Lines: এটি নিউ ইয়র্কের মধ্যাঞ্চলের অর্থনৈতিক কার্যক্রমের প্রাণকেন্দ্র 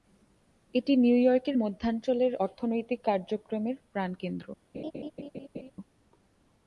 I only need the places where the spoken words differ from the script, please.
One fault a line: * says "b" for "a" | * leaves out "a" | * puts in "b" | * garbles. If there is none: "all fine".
all fine